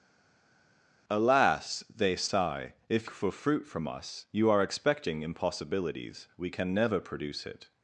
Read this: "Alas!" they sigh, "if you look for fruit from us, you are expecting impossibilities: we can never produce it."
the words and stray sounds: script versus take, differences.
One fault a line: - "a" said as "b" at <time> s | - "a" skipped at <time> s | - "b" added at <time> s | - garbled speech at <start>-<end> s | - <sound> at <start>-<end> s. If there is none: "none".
- "you look" skipped at 3.1 s